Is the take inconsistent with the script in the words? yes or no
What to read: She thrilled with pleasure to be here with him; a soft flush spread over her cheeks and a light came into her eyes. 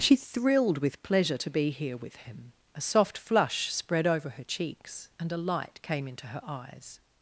no